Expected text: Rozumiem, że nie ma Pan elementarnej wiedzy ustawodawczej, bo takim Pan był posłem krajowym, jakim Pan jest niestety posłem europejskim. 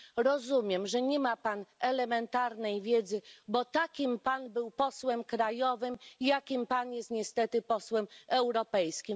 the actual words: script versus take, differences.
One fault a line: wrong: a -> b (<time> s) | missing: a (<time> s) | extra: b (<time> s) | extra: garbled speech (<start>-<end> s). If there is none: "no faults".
missing: ustawodawczej (3.2 s)